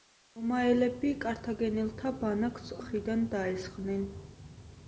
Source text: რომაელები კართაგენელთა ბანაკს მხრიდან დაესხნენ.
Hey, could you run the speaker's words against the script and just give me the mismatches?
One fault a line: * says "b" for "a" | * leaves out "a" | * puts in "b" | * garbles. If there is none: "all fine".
all fine